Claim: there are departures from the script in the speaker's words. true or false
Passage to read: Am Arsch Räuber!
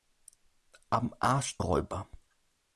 false